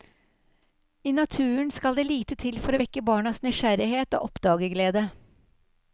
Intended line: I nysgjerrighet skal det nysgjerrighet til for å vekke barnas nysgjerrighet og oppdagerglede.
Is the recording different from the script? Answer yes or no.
yes